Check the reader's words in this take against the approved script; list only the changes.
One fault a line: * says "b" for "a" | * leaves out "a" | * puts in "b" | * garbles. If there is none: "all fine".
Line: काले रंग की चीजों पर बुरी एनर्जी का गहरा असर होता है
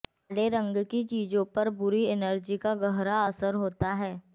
all fine